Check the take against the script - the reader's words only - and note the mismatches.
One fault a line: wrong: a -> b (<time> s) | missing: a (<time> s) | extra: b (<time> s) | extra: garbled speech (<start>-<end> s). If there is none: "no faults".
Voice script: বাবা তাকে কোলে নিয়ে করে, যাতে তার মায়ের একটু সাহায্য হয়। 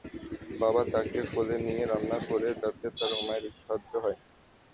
extra: রান্না (1.8 s)